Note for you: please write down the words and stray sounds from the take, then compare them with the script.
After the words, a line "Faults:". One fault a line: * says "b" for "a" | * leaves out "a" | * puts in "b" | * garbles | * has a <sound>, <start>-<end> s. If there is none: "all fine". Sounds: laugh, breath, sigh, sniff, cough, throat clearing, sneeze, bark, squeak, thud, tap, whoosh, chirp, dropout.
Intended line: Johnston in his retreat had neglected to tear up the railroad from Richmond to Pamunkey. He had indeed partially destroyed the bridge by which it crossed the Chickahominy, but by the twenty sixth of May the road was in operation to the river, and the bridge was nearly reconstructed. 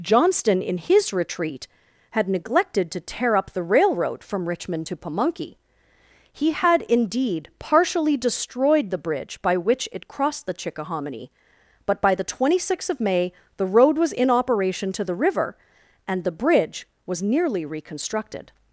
Johnston in his retreat had neglected to tear up the railroad from Richmond to Pamunkey. He had indeed partially destroyed the bridge by which it crossed the Chickahominy, but by the twenty sixth of May the road was in operation to the river, and the bridge was nearly reconstructed.
Faults:
all fine